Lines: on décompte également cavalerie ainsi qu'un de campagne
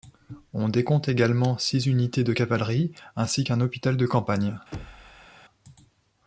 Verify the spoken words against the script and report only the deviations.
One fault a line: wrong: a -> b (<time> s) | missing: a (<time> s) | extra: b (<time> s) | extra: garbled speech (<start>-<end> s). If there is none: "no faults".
extra: six unités de (1.6 s)
extra: hôpital (3.6 s)